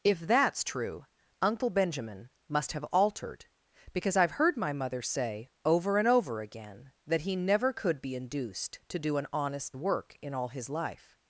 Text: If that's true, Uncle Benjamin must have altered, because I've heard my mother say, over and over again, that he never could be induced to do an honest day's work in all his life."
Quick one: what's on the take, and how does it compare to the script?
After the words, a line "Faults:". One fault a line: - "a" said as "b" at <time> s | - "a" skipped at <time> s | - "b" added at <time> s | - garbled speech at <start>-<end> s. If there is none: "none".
If that's true, Uncle Benjamin must have altered, because I've heard my mother say, over and over again, that he never could be induced to do an honest work in all his life."
Faults:
- "day's" skipped at 9.7 s